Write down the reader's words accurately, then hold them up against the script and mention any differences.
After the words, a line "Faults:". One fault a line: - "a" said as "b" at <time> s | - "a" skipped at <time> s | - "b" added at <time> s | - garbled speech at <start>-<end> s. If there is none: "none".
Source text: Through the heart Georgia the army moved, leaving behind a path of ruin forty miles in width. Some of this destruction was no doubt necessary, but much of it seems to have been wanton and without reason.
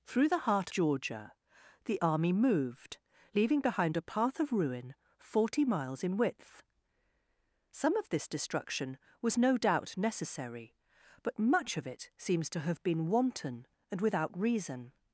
Through the heart Georgia the army moved, leaving behind a path of ruin forty miles in width. Some of this destruction was no doubt necessary, but much of it seems to have been wanton and without reason.
Faults:
none